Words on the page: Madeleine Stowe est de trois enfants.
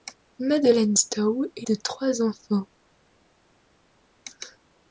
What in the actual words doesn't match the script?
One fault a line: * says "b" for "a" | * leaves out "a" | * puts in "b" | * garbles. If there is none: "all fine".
all fine